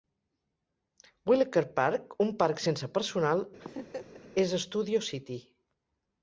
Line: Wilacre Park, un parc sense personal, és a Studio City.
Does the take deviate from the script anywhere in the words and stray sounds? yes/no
yes